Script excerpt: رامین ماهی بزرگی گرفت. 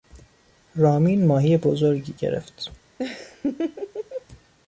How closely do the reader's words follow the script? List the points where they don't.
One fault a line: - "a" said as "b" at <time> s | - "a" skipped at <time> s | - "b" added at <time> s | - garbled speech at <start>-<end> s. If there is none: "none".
none